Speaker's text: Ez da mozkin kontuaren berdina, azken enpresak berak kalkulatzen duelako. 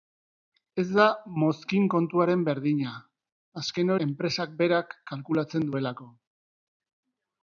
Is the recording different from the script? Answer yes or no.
no